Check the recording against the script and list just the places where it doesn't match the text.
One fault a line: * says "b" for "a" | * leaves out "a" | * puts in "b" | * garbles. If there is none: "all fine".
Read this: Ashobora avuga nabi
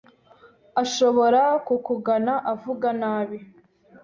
* puts in "kukugana"